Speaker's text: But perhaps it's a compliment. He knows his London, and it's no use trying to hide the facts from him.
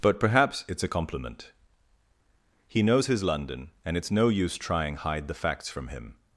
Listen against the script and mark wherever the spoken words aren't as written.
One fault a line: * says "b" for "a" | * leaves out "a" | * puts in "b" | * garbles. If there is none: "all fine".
* leaves out "to"